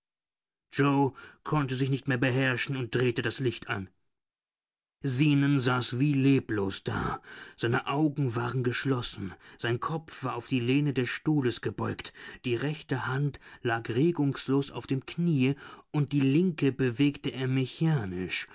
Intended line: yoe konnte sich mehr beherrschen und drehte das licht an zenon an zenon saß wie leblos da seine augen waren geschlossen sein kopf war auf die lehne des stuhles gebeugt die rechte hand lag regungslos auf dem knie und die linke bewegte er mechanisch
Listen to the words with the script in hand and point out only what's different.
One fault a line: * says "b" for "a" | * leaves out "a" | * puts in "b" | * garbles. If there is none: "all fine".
* puts in "nicht"
* leaves out "an zenon"